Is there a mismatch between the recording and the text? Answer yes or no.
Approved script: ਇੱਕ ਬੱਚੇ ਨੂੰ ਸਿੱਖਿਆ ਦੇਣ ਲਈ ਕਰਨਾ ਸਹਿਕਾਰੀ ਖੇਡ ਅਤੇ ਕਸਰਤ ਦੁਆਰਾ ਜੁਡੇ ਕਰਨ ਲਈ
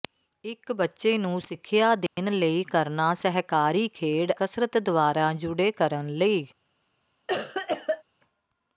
yes